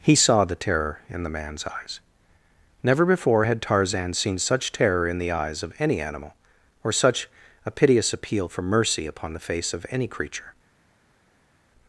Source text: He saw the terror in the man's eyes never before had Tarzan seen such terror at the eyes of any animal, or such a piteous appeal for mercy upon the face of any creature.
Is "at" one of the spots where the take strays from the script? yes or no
yes